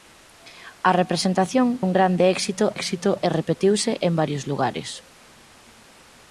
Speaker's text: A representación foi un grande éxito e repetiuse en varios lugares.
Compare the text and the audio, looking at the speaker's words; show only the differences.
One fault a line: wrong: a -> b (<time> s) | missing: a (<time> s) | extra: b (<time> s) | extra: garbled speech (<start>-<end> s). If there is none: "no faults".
missing: foi (1.7 s)
extra: éxito (2.8 s)